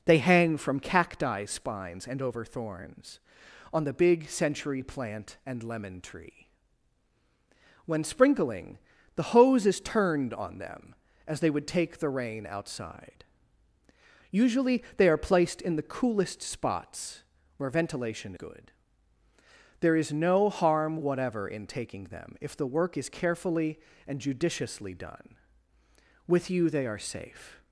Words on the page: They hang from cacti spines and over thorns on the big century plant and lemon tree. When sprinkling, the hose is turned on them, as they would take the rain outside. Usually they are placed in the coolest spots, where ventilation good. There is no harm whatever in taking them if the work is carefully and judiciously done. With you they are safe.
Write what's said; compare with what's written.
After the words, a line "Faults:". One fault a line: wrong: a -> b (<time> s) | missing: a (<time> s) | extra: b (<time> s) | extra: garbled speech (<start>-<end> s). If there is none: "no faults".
They hang from cacti spines and over thorns on the big century plant and lemon tree. When sprinkling, the hose is turned on them, as they would take the rain outside. Usually they are placed in the coolest spots, where ventilation good. There is no harm whatever in taking them if the work is carefully and judiciously done. With you they are safe.
Faults:
no faults